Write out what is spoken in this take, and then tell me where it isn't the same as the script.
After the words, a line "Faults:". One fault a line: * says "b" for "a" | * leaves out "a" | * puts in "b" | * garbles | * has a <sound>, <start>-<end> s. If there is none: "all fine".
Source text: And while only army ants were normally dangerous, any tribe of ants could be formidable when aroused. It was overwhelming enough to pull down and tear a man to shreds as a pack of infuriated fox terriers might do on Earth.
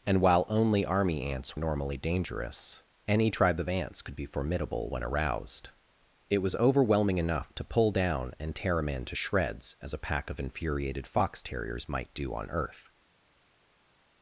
And while only army ants normally dangerous, any tribe of ants could be formidable when aroused. It was overwhelming enough to pull down and tear a man to shreds as a pack of infuriated fox terriers might do on Earth.
Faults:
* leaves out "were"